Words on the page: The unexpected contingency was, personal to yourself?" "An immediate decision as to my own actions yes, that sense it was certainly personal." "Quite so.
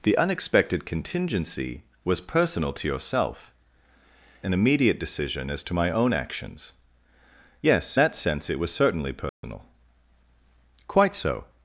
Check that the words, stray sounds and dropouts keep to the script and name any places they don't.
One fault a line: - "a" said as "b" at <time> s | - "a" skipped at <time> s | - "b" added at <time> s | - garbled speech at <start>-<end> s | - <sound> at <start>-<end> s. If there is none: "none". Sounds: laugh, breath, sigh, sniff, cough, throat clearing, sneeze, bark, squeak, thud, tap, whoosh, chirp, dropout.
- dropout at 9.3-9.4 s